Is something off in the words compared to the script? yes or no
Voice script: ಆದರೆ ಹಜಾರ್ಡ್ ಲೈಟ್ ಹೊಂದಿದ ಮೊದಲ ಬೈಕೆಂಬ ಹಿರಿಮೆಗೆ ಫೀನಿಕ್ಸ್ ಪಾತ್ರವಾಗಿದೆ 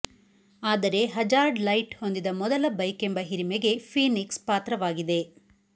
no